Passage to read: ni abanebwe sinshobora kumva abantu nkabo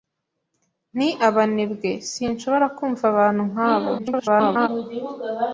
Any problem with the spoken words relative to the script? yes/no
yes